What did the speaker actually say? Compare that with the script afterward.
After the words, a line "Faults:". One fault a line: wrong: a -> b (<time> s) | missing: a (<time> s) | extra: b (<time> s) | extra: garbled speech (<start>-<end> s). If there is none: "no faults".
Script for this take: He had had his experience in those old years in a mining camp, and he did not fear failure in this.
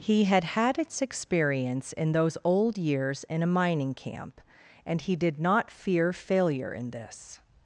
He had had its experience in those old years in a mining camp, and he did not fear failure in this.
Faults:
wrong: his -> its (0.8 s)